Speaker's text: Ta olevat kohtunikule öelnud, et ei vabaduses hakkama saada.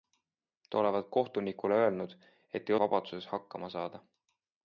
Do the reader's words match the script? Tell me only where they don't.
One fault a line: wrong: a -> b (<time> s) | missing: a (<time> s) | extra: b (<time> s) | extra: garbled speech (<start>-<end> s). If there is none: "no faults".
no faults